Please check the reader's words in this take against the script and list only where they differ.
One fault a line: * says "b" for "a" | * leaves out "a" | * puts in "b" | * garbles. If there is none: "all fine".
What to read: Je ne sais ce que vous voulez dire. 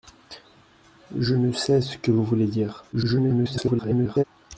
* garbles